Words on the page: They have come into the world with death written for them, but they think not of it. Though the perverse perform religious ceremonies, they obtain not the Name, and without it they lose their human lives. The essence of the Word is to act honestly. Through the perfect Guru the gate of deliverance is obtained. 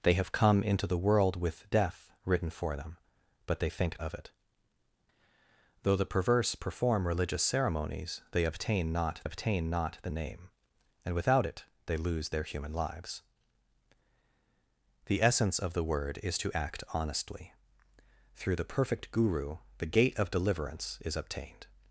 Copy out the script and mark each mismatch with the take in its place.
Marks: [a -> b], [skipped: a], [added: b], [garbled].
They have come into the world with death written for them, but they think [skipped: not] of it. Though the perverse perform religious ceremonies, they obtain not [added: obtain not] the Name, and without it they lose their human lives. The essence of the Word is to act honestly. Through the perfect Guru the gate of deliverance is obtained.